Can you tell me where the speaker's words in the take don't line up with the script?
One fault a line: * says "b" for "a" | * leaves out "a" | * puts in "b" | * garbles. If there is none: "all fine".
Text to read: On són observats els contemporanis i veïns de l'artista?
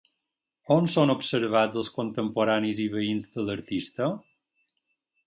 all fine